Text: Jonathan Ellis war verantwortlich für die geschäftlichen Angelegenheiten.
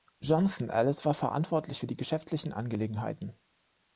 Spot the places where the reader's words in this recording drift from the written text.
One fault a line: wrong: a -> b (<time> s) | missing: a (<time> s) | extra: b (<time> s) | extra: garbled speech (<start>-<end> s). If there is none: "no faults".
no faults